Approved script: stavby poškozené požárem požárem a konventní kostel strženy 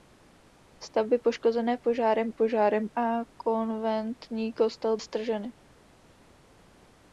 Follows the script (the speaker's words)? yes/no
yes